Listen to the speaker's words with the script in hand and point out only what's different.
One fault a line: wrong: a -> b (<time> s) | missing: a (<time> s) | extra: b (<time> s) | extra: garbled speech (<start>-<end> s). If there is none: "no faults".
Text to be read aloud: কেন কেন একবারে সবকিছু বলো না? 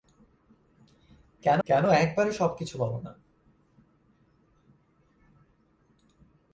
no faults